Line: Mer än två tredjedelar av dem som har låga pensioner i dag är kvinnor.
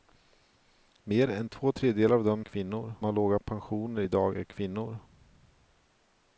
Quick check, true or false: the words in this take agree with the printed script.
false